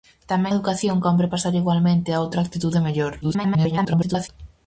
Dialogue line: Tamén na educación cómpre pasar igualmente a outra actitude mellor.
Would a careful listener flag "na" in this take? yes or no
yes